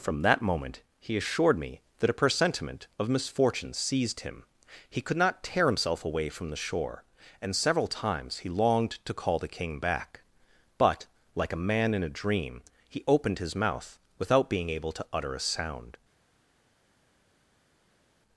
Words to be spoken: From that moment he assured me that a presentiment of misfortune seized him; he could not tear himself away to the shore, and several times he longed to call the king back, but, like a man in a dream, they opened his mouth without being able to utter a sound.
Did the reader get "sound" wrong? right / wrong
right